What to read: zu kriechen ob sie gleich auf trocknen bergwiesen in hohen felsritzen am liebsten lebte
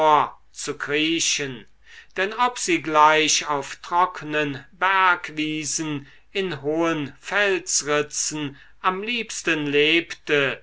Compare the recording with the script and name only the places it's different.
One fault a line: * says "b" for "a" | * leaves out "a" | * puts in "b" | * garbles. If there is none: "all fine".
* puts in "denn"